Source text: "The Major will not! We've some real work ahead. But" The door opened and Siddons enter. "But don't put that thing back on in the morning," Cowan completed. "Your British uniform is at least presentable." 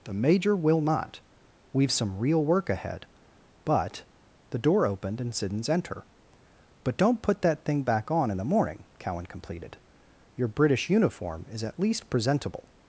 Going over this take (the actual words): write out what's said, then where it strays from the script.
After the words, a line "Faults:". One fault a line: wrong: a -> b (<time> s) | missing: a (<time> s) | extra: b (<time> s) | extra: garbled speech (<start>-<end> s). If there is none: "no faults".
"The Major will not! We've some real work ahead. But" The door opened and Siddons enter. "But don't put that thing back on in the morning," Cowan completed. "Your British uniform is at least presentable."
Faults:
no faults